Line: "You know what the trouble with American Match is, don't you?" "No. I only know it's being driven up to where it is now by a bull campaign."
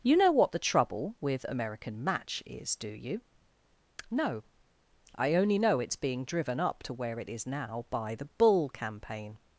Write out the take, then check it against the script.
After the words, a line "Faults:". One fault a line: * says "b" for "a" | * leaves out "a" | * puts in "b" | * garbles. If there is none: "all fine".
"You know what the trouble with American Match is, do you?" "No. I only know it's being driven up to where it is now by the bull campaign."
Faults:
* says "do" for "don't"
* says "the" for "a"